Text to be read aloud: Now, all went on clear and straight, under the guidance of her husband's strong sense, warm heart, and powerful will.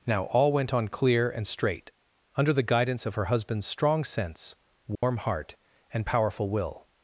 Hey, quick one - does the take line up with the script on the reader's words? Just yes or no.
yes